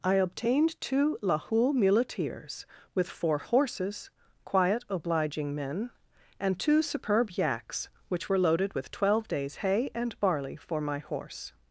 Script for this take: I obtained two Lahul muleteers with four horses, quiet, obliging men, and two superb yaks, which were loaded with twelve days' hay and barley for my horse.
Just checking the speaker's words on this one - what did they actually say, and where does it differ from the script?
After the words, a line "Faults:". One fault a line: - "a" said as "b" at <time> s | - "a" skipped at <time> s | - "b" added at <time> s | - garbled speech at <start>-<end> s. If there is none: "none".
I obtained two Lahul muleteers with four horses, quiet, obliging men, and two superb yaks, which were loaded with twelve days' hay and barley for my horse.
Faults:
none